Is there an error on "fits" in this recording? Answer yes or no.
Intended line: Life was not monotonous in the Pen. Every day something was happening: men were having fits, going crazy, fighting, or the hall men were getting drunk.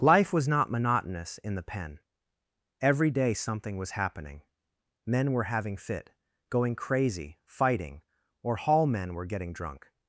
yes